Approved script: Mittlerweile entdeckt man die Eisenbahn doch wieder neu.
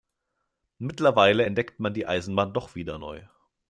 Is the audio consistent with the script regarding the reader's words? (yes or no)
yes